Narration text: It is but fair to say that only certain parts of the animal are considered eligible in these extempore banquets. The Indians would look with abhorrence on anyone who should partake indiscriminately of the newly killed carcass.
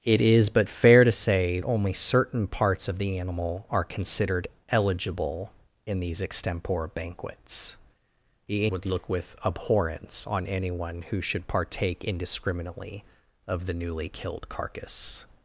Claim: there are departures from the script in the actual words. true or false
true